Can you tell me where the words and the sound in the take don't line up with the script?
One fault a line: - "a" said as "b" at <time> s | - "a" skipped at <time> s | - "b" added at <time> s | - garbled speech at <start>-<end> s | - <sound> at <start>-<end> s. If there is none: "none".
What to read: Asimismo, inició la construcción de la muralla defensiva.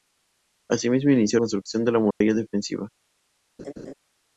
- "la" skipped at 1.4 s
- dropout at 2.1-2.2 s
- laugh at 3.6-3.9 s